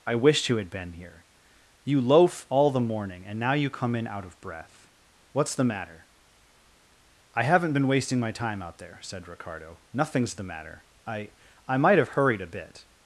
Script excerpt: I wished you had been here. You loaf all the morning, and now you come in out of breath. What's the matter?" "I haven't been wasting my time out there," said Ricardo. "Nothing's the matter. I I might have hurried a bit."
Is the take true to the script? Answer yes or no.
yes